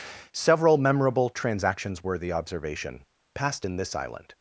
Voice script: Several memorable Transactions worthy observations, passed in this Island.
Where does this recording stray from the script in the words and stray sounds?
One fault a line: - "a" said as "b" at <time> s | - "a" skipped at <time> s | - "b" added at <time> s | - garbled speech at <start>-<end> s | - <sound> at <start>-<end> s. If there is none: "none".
- "observations" said as "observation" at 2.3 s